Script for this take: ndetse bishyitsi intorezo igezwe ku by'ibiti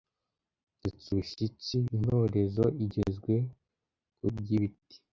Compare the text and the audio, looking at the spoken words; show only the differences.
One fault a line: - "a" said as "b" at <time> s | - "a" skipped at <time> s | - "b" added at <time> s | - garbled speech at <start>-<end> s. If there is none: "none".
none